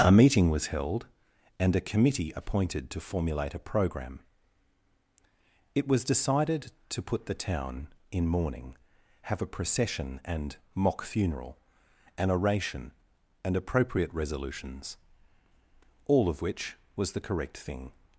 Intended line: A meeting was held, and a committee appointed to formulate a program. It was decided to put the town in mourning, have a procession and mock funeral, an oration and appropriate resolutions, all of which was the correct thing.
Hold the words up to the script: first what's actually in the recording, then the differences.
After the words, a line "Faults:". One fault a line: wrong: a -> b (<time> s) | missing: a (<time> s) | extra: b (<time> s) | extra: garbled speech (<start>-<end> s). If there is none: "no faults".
A meeting was held, and a committee appointed to formulate a program. It was decided to put the town in mourning, have a procession and mock funeral, an oration and appropriate resolutions, all of which was the correct thing.
Faults:
no faults